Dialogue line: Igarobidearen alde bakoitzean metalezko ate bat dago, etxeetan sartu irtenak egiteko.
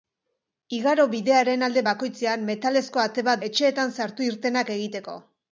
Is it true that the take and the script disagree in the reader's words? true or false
true